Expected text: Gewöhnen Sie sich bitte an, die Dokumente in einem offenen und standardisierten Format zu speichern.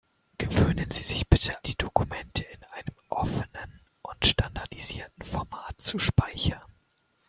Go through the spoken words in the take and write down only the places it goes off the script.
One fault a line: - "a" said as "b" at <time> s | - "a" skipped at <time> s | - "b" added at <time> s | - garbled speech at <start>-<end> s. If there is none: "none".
- "an" skipped at 1.6 s